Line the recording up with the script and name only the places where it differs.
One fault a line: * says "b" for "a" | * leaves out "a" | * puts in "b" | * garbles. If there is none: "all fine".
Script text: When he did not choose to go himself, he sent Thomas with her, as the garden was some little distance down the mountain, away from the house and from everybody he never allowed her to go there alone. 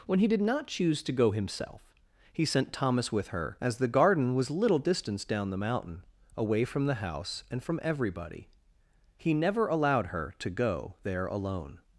* leaves out "some"